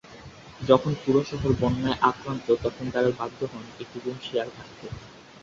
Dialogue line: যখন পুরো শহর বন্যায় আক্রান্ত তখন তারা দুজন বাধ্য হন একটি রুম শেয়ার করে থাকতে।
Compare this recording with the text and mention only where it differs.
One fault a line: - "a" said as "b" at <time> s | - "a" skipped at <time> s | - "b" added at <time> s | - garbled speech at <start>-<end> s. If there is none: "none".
- "দুজন" skipped at 3.1 s
- "করে" skipped at 4.5 s